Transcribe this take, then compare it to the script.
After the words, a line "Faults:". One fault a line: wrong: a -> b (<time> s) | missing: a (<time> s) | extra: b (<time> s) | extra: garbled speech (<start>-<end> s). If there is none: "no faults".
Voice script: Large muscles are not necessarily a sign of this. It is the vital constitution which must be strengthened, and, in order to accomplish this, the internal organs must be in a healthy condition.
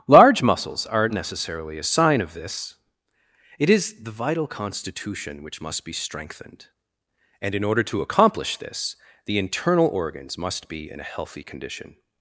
Large muscles are necessarily a sign of this. It is the vital constitution which must be strengthened, and, in order to accomplish this, the internal organs must be in a healthy condition.
Faults:
missing: not (1.1 s)